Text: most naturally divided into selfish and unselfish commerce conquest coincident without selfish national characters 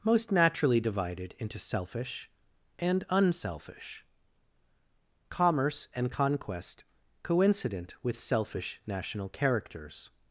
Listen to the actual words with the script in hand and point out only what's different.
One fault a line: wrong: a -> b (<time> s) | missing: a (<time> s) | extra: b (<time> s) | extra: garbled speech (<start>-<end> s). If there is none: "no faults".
extra: and (5.9 s)
wrong: without -> with (8.0 s)